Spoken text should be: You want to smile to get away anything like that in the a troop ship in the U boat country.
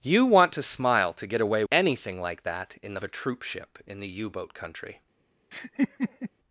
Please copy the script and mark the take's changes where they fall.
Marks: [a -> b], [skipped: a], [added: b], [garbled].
You want to smile to get away anything like that in the a troop ship in the U boat country.